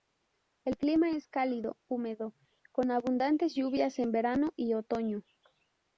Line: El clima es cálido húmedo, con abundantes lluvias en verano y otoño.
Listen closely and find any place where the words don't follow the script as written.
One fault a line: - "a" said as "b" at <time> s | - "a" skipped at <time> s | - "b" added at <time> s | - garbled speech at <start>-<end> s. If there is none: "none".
none